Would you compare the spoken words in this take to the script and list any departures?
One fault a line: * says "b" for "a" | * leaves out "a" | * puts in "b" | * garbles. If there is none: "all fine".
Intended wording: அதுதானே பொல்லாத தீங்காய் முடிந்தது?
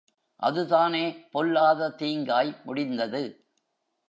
all fine